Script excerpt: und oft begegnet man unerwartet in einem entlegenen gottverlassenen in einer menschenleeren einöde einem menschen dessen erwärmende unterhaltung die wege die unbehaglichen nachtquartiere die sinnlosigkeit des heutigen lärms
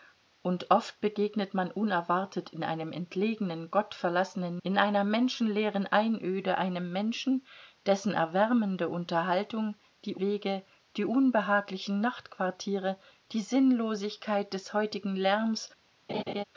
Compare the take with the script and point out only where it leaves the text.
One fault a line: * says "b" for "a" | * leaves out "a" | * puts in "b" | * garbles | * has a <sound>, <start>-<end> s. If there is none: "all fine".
* has a laugh, 16.1-16.4 s